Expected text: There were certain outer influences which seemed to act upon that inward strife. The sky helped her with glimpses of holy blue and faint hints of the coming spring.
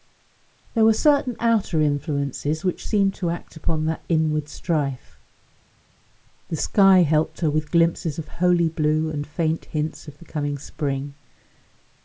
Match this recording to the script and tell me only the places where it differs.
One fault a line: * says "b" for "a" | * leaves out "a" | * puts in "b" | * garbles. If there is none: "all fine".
all fine